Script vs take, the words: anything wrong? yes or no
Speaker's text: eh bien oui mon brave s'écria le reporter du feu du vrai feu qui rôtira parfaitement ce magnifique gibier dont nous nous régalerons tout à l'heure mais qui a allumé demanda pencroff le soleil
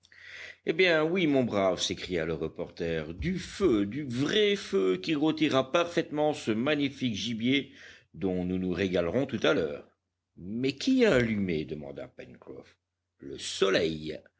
no